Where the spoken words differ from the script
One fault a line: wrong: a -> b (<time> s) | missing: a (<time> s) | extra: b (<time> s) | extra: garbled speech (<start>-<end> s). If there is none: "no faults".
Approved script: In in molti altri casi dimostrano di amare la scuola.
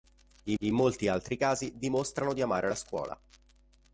no faults